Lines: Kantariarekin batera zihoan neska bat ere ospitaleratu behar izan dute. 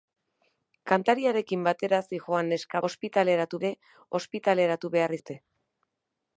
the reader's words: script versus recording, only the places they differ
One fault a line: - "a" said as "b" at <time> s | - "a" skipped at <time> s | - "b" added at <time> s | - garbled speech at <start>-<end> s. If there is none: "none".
- "bat" said as "ospitaleratu" at 2.9 s
- "izan" skipped at 5.2 s